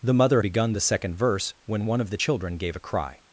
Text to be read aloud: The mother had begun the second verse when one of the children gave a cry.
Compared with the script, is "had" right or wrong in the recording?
wrong